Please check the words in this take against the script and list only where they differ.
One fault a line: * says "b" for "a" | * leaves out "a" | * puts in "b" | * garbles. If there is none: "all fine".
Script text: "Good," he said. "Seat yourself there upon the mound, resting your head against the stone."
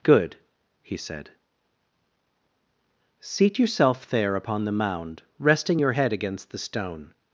all fine